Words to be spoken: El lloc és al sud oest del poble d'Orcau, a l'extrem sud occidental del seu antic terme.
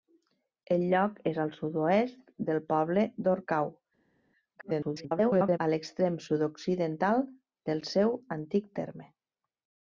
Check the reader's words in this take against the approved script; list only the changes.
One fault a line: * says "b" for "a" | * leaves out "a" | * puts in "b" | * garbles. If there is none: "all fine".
* garbles